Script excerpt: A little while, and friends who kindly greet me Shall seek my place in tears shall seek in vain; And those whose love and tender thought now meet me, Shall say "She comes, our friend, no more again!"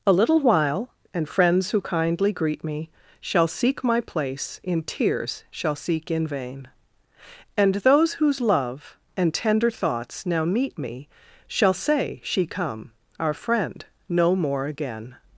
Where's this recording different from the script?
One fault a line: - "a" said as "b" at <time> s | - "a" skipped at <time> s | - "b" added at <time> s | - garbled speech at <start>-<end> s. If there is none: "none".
- "thought" said as "thoughts" at 9.7 s
- "comes" said as "come" at 12.5 s